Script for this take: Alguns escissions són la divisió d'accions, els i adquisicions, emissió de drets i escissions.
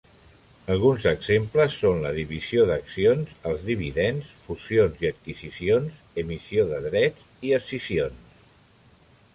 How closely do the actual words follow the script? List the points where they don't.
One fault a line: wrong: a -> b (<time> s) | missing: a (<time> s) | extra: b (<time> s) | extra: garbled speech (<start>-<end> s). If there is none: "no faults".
wrong: escissions -> exemples (1.1 s)
extra: dividends fusions (3.7 s)